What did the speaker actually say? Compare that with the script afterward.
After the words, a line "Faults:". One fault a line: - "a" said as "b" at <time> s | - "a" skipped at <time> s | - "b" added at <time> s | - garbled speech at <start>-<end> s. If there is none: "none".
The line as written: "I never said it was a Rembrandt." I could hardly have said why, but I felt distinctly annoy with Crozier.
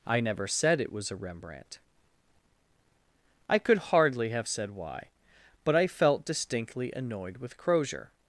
"I never said it was a Rembrandt." I could hardly have said why, but I felt distinctly annoyed with Crozier.
Faults:
- "annoy" said as "annoyed" at 6.9 s